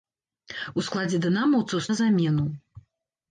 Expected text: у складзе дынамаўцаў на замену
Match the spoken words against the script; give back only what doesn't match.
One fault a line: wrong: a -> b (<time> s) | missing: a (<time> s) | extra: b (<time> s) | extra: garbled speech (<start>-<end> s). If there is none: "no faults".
no faults